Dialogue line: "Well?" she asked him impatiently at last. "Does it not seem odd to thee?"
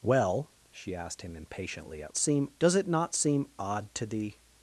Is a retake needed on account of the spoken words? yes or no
yes